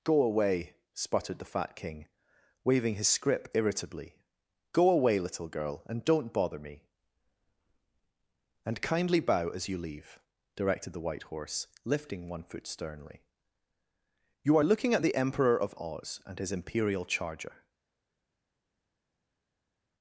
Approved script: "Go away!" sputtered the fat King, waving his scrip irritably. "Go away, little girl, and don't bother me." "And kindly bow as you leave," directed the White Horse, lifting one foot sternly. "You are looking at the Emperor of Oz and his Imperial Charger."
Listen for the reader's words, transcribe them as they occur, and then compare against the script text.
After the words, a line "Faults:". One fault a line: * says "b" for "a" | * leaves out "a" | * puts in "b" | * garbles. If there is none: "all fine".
"Go away!" sputtered the fat King, waving his scrip irritably. "Go away, little girl, and don't bother me." "And kindly bow as you leave," directed the White Horse, lifting one foot sternly. "You are looking at the Emperor of Oz and his Imperial Charger."
Faults:
all fine